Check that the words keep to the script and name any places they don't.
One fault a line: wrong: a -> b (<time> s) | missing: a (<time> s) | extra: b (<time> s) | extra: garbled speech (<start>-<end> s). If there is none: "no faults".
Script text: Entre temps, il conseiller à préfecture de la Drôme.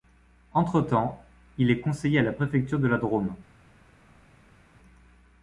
extra: est (1.7 s)
extra: la (2.2 s)